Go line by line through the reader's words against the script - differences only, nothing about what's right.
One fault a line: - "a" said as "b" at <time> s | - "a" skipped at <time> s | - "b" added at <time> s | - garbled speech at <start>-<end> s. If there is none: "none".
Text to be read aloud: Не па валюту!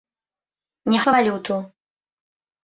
none